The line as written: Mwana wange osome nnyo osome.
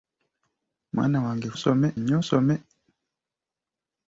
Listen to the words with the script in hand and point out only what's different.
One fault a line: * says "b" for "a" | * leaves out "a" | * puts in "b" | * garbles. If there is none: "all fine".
all fine